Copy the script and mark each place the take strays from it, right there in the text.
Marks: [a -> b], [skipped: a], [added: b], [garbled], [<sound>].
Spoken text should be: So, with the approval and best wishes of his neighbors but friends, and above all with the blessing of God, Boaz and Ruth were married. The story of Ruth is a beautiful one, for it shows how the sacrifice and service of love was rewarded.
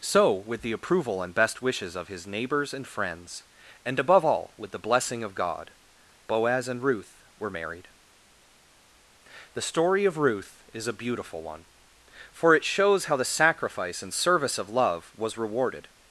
So, with the approval and best wishes of his neighbors [but -> and] friends, and above all with the blessing of God, Boaz and Ruth were married. The story of Ruth is a beautiful one, for it shows how the sacrifice and service of love was rewarded.